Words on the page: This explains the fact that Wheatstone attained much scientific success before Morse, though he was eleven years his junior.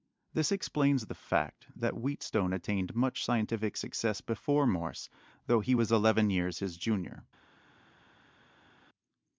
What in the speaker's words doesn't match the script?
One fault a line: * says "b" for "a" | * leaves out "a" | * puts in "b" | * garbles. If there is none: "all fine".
all fine